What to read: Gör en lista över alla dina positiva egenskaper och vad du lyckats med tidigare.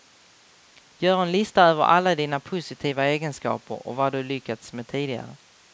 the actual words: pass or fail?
pass